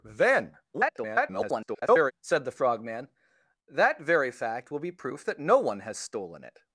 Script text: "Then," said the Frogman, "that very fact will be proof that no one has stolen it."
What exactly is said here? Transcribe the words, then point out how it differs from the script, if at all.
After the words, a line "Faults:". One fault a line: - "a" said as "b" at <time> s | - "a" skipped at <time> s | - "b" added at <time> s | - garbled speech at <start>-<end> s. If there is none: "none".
"Then," [garbled] said the Frogman, "that very fact will be proof that no one has stolen it."
Faults:
- garbled speech at 0.7-2.1 s